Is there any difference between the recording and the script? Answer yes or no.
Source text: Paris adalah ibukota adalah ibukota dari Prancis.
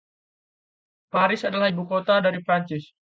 yes